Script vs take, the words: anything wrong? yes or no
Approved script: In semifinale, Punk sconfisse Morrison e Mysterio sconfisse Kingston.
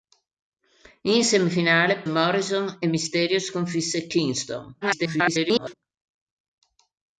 yes